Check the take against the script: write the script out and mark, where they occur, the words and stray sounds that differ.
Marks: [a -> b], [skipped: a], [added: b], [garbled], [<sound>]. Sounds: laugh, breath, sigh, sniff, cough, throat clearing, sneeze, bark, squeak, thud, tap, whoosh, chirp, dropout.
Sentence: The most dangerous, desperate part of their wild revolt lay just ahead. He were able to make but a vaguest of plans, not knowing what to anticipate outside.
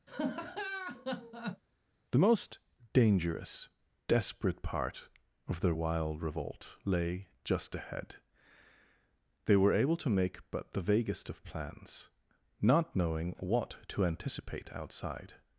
[laugh] The most dangerous, desperate part of their wild revolt lay just ahead. [He -> They] were able to make but [a -> the] vaguest of plans, not knowing what to anticipate outside.